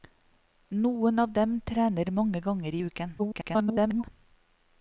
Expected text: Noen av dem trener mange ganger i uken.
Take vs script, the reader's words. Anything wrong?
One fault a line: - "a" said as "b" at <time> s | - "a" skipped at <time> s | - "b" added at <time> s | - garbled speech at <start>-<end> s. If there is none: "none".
- garbled speech at 3.2-4.0 s